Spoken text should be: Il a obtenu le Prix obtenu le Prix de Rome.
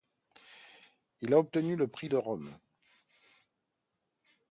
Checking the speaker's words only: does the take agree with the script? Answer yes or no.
no